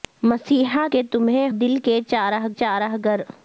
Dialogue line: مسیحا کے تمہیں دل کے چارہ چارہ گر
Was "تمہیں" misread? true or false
false